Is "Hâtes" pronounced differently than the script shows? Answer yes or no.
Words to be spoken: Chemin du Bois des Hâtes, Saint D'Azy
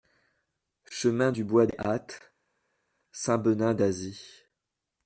no